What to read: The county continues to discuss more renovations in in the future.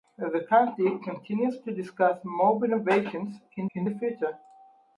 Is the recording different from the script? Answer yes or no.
no